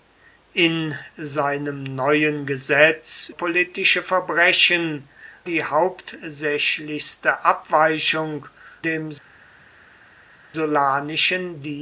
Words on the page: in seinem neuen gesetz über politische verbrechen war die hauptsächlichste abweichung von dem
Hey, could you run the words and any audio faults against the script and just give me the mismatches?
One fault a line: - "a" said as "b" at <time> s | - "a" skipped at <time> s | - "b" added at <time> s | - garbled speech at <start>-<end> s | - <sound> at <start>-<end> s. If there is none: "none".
- "über" skipped at 3.3 s
- "war" skipped at 5.1 s
- "von" skipped at 8.5 s